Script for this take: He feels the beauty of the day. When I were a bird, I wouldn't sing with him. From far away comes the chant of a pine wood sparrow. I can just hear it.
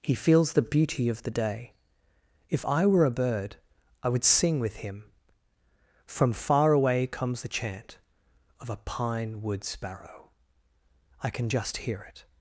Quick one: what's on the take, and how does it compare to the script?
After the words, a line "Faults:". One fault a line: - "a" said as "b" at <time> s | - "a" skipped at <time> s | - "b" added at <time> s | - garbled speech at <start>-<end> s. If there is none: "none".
He feels the beauty of the day. If I were a bird, I would sing with him. From far away comes the chant of a pine wood sparrow. I can just hear it.
Faults:
- "When" said as "If" at 2.5 s
- "wouldn't" said as "would" at 4.1 s